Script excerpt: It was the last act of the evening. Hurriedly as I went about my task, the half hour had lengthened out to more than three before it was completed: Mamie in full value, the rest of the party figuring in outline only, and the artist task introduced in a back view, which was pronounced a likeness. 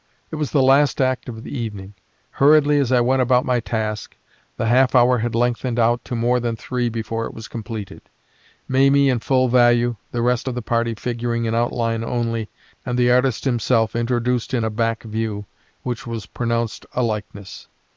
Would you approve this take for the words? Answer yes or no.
no